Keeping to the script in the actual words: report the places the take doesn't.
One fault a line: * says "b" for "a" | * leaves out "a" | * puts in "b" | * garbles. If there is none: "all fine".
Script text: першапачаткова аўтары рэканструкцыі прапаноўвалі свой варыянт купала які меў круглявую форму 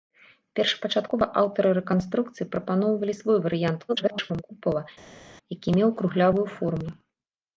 * garbles